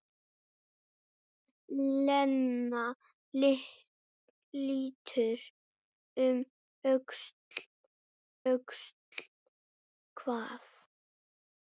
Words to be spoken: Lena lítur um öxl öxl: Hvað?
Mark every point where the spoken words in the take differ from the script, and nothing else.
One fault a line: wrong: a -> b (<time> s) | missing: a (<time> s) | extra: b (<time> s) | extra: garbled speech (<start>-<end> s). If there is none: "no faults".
no faults